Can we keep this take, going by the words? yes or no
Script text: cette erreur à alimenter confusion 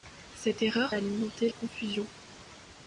yes